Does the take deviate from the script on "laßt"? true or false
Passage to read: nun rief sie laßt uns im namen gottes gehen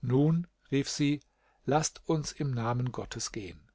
false